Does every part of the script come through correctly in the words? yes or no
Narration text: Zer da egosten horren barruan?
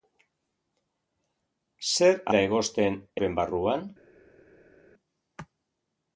yes